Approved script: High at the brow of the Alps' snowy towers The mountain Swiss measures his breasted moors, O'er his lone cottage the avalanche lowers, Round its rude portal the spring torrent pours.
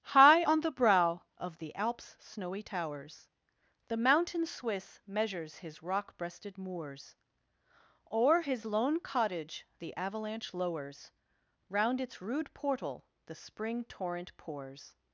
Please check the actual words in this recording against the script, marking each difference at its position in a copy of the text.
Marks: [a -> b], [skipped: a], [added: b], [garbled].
High [at -> on] the brow of the Alps' snowy towers The mountain Swiss measures his [added: rock] breasted moors, O'er his lone cottage the avalanche lowers, Round its rude portal the spring torrent pours.